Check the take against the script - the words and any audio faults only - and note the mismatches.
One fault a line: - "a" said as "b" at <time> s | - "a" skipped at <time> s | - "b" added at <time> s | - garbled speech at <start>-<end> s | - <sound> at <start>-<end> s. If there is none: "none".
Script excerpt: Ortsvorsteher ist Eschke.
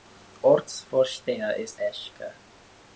none